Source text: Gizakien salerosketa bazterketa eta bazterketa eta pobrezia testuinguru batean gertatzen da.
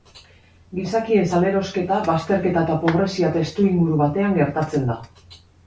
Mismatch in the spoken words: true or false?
true